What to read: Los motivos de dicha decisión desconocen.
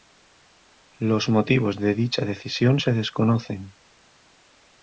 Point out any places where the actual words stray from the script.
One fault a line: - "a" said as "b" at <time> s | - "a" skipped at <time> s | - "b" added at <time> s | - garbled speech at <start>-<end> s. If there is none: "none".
- "se" added at 2.8 s